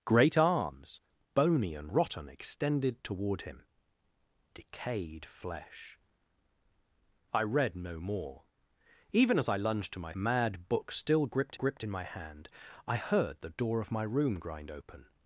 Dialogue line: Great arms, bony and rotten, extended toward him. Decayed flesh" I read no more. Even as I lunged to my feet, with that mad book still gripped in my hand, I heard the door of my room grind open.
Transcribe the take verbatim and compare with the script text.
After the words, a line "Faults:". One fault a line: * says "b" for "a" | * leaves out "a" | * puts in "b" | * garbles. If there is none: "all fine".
Great arms, bony and rotten, extended toward him. Decayed flesh" I read no more. Even as I lunged to my mad book still gripped gripped in my hand, I heard the door of my room grind open.
Faults:
* leaves out "feet with that"
* puts in "gripped"